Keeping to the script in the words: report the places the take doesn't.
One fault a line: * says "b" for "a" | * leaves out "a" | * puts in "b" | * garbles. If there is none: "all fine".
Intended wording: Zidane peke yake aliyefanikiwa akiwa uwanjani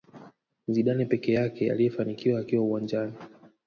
all fine